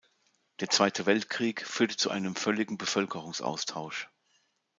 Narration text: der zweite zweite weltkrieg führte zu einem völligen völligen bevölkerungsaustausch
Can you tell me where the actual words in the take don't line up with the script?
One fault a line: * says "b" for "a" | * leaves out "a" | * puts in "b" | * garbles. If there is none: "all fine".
* leaves out "zweite"
* leaves out "völligen"